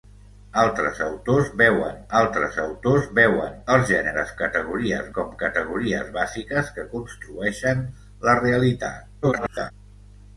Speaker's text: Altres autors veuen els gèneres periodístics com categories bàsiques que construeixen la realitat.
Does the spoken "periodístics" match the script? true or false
false